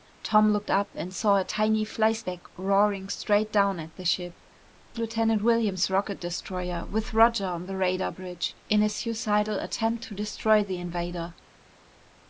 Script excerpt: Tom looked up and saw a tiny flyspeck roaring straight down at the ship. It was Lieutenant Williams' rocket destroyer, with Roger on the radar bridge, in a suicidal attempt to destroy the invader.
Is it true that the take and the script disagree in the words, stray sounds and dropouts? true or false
true